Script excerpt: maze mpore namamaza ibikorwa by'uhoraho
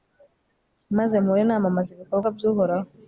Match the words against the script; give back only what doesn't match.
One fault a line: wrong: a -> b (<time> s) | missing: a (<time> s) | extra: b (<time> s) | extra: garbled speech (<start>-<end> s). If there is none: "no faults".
no faults